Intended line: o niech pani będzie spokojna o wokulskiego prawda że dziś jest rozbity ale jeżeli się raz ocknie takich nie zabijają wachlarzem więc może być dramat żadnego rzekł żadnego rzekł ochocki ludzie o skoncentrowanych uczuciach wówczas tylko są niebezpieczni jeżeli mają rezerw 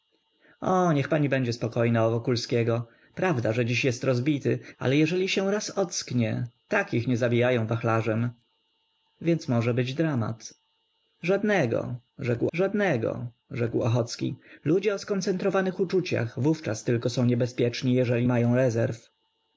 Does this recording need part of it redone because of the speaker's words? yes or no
no